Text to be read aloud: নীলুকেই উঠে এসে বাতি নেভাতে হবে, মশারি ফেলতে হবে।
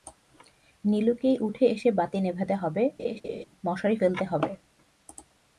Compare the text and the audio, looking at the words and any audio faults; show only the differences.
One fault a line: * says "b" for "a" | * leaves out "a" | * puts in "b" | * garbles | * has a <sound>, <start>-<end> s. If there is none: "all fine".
* has a laugh, 3.0-3.5 s